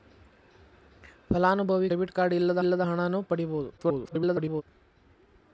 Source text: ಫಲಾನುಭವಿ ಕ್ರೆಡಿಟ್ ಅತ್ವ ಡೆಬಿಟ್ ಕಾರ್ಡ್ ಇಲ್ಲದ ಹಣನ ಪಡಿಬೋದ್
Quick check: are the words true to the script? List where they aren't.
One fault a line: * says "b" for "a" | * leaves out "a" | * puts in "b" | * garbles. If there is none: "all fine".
* leaves out "ಕ್ರೆಡಿಟ್ ಅತ್ವ"
* puts in "ಇಲ್ಲದ"
* garbles